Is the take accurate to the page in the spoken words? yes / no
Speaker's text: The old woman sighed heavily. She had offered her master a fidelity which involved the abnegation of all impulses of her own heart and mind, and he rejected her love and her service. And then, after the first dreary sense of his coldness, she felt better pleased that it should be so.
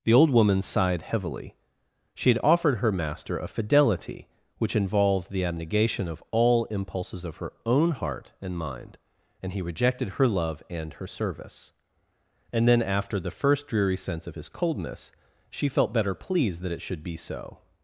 yes